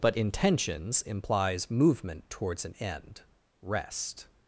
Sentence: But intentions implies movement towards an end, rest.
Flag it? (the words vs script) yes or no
no